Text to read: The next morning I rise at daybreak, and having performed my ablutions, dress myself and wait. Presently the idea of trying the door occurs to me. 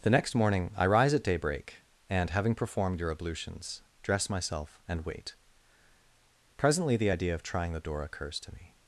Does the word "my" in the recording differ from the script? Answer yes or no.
yes